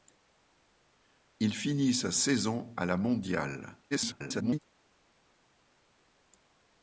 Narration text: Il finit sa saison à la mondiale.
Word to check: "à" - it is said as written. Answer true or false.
true